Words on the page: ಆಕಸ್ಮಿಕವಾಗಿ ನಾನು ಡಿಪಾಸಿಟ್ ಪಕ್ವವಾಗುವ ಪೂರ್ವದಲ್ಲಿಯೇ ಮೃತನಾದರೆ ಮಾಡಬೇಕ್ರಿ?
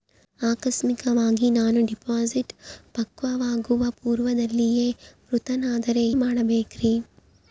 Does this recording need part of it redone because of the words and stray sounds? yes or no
no